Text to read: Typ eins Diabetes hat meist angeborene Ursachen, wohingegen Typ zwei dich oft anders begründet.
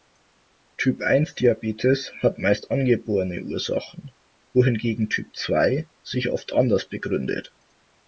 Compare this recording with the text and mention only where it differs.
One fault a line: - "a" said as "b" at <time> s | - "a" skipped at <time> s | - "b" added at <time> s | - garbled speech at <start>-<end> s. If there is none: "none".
- "dich" said as "sich" at 6.0 s